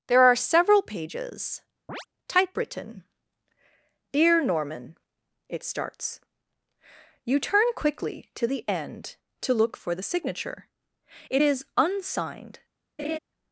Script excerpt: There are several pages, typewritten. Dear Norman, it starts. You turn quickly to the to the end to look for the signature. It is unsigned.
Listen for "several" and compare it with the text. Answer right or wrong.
right